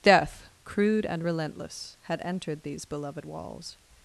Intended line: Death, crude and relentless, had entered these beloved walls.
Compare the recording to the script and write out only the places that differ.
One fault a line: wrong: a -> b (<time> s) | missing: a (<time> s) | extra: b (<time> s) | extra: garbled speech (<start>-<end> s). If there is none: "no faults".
no faults